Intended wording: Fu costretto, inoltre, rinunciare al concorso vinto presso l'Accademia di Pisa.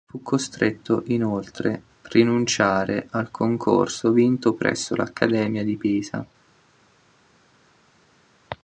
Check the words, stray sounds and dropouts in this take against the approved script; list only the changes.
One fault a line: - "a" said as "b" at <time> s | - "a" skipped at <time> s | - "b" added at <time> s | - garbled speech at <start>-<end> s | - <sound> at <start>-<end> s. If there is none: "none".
none